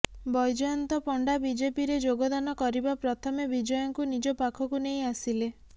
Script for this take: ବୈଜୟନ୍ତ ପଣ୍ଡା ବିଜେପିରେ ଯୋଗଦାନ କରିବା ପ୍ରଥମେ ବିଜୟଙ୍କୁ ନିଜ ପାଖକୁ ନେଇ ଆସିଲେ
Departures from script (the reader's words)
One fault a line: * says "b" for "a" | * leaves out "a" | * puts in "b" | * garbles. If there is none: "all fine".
all fine